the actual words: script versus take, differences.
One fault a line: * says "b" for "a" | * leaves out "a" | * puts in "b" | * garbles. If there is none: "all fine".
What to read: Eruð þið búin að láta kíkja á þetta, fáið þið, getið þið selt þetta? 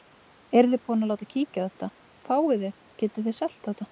all fine